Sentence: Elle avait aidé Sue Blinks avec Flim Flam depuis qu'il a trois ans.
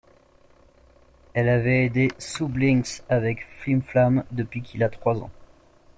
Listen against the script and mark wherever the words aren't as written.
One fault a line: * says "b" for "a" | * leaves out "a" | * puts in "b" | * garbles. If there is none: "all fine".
all fine